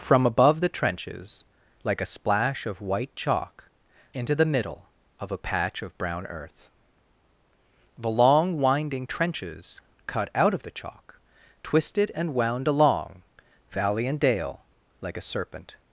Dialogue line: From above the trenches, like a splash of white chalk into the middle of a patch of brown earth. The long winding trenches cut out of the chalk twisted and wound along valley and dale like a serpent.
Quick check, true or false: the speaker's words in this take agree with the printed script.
true